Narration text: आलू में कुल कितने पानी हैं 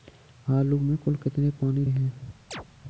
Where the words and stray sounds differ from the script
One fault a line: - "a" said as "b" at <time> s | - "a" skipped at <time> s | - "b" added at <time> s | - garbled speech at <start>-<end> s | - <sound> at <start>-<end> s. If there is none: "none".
- chirp at 2.5-2.7 s